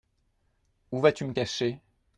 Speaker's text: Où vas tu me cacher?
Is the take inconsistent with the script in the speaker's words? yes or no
no